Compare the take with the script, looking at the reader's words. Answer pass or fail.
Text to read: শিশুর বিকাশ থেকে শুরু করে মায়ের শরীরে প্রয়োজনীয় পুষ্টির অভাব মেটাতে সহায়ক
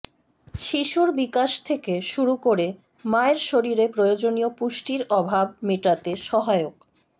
pass